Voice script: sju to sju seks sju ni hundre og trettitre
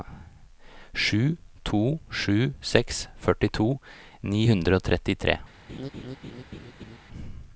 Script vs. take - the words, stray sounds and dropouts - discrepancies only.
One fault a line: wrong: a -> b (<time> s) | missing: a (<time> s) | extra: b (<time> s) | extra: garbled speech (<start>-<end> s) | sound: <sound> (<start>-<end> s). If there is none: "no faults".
wrong: sju -> førtito (3.2 s)
sound: laugh (5.7-7.0 s)